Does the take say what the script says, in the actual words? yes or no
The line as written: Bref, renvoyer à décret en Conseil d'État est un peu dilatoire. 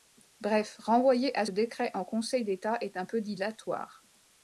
yes